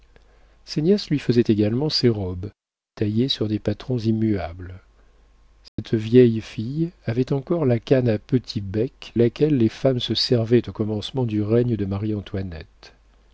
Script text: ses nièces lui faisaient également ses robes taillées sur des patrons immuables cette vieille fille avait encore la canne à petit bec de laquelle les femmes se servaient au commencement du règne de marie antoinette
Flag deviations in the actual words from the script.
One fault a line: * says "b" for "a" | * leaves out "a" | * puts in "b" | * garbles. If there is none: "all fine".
* leaves out "de"